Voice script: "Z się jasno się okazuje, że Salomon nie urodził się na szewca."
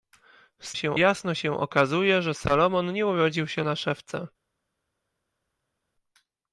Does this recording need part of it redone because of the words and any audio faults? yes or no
no